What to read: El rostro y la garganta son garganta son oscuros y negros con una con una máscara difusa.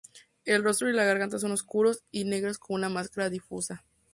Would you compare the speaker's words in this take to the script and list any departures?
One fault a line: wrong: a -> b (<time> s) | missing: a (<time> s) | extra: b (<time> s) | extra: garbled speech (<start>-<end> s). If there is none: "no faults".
missing: garganta son (1.5 s)
missing: con una (2.9 s)